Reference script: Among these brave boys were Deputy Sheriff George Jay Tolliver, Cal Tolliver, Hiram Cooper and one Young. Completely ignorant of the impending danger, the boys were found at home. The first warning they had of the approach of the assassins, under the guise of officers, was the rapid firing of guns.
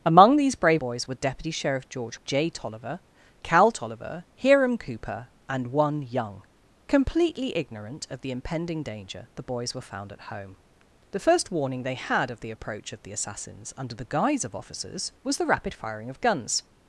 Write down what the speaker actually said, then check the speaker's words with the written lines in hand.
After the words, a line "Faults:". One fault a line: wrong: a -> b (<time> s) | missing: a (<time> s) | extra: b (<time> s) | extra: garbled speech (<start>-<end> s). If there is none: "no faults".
Among these brave boys were Deputy Sheriff George Jay Tolliver, Cal Tolliver, Hiram Cooper and one Young. Completely ignorant of the impending danger, the boys were found at home. The first warning they had of the approach of the assassins, under the guise of officers, was the rapid firing of guns.
Faults:
no faults